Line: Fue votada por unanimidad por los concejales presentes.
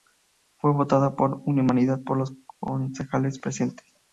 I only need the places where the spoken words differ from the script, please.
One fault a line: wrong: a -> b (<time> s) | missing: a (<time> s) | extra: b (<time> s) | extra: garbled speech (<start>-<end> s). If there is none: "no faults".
no faults